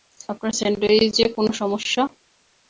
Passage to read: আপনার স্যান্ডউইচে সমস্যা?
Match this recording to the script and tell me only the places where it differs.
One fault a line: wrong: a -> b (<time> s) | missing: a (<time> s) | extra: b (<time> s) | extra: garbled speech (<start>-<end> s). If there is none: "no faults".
extra: কোনো (1.4 s)